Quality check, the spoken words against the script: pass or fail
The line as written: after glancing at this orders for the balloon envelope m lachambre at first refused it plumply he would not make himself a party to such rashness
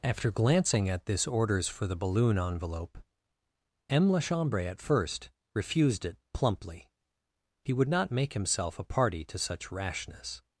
pass